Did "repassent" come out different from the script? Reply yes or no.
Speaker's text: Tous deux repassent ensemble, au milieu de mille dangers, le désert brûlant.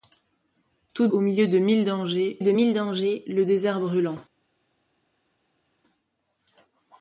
yes